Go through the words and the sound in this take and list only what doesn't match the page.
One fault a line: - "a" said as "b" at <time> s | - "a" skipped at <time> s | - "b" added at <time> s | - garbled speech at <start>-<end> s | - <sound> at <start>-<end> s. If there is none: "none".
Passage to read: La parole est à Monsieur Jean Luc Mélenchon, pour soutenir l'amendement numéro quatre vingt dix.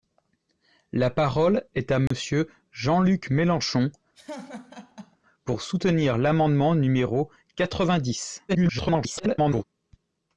- dropout at 2.1-2.1 s
- laugh at 4.1-5.2 s
- garbled speech at 8.5-9.6 s